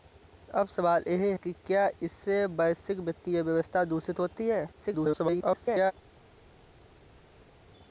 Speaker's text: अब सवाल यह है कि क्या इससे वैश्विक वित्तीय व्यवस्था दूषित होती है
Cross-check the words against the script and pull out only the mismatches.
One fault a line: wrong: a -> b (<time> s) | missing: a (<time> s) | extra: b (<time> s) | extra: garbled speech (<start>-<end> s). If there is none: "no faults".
missing: है (1.4 s)
extra: garbled speech (4.7-5.9 s)